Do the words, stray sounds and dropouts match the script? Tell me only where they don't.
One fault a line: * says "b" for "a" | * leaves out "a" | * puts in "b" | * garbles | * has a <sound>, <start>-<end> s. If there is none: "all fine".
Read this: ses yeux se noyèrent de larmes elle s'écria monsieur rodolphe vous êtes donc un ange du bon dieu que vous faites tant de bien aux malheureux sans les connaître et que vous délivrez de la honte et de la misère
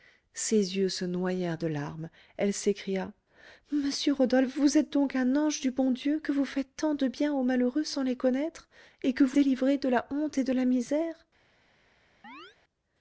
* has a chirp, 12.2-12.6 s